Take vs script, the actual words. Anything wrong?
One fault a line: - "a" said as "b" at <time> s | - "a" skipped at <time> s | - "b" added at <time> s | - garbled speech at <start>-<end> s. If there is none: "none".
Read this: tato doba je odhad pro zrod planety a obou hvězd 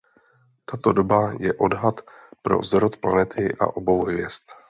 none